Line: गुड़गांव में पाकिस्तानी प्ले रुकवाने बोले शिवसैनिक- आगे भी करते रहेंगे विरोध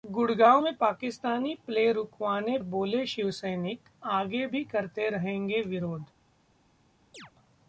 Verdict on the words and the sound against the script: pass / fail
fail